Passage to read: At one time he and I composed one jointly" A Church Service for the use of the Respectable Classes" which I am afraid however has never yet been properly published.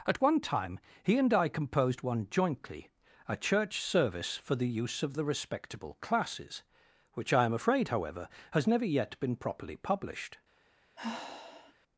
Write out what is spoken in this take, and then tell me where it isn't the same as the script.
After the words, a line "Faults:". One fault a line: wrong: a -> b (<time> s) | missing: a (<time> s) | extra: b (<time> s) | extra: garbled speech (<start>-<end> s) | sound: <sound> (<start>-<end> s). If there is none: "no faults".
At one time he and I composed one jointly" A Church Service for the use of the Respectable Classes" which I am afraid however has never yet been properly published.
Faults:
sound: sigh (11.0-11.7 s)